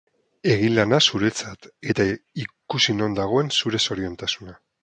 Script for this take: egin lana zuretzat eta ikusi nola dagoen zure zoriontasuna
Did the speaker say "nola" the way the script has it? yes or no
no